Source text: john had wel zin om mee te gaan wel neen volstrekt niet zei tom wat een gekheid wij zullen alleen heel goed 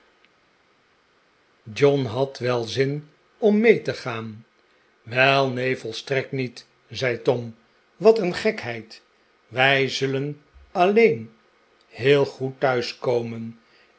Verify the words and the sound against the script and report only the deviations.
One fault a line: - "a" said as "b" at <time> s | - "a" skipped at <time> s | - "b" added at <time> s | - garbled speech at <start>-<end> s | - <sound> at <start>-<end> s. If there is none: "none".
none